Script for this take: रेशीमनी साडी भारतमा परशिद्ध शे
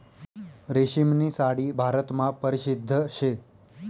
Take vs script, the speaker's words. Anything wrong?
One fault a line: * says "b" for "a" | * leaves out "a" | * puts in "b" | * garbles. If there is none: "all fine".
all fine